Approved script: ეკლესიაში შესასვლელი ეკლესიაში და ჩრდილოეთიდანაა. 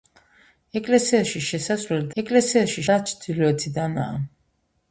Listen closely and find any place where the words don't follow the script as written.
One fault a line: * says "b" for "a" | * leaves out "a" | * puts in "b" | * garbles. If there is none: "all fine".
all fine